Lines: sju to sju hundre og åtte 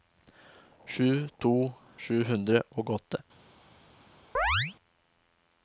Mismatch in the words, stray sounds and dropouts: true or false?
true